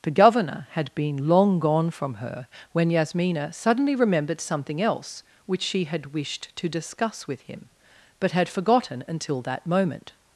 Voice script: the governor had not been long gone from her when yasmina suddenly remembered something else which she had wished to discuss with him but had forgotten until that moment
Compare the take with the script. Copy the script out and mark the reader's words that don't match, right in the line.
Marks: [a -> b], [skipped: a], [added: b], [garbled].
the governor had [skipped: not] been long gone from her when yasmina suddenly remembered something else which she had wished to discuss with him but had forgotten until that moment